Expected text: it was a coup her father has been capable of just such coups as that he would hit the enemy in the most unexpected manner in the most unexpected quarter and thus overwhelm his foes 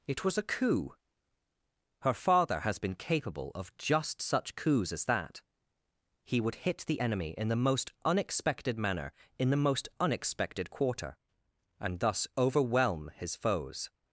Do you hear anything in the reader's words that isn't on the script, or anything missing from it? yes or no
no